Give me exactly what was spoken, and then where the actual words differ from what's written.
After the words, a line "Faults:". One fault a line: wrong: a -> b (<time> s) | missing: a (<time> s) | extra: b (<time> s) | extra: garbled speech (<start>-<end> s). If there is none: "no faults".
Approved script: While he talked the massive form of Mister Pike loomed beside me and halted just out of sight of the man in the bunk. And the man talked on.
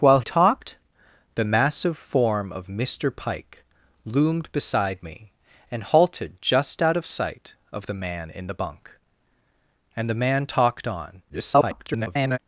While talked the massive form of Mister Pike loomed beside me and halted just out of sight of the man in the bunk. And the man talked on. [garbled]
Faults:
missing: he (0.2 s)
extra: garbled speech (11.3-12.4 s)